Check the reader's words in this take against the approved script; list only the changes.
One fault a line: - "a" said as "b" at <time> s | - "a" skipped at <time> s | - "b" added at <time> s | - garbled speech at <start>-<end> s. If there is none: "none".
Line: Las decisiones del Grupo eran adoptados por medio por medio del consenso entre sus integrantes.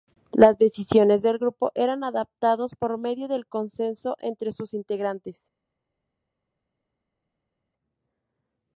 - "por medio" skipped at 3.3 s